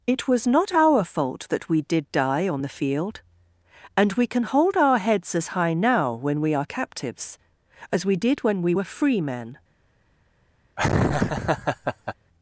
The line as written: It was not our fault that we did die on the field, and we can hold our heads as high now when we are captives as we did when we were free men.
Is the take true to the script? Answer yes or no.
yes